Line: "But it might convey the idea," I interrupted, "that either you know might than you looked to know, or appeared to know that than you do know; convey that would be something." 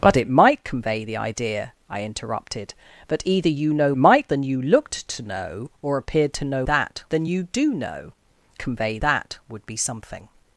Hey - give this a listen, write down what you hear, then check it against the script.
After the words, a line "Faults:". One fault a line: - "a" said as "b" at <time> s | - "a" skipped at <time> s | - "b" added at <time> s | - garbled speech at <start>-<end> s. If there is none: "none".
"But it might convey the idea," I interrupted, "that either you know might than you looked to know, or appeared to know that than you do know; convey that would be something."
Faults:
none